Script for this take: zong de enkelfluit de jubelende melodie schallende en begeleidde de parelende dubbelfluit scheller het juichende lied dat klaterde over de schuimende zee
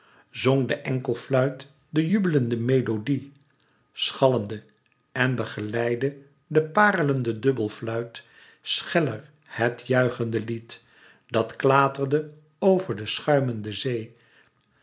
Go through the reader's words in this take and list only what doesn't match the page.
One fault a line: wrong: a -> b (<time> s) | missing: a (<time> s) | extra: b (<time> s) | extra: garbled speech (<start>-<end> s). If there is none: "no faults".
no faults